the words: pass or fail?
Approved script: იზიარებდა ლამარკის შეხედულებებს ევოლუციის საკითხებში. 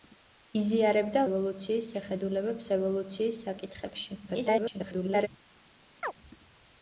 fail